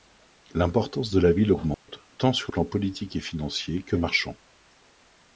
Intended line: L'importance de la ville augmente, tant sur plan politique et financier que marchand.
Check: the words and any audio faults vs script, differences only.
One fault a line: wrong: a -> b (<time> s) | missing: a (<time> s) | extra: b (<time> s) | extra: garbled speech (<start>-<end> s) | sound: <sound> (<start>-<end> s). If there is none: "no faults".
sound: dropout (1.7-1.9 s)